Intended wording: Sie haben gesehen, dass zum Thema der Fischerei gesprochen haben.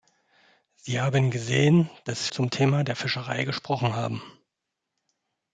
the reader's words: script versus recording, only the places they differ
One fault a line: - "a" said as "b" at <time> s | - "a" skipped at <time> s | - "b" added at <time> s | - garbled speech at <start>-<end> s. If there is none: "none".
none